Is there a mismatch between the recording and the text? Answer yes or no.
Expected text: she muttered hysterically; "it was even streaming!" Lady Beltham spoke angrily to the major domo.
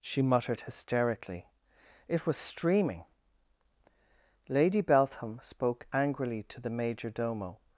yes